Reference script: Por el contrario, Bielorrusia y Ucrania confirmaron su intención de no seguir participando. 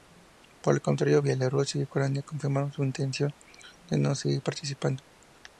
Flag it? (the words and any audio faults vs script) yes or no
no